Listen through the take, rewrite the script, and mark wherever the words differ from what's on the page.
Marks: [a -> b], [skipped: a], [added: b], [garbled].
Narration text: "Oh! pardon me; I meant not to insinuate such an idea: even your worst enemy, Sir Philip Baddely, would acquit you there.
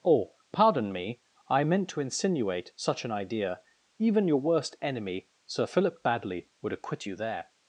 "Oh! pardon me; I meant [skipped: not] to insinuate such an idea: even your worst enemy, Sir Philip Baddely, would acquit you there.